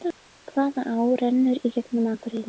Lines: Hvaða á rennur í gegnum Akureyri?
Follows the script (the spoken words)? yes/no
yes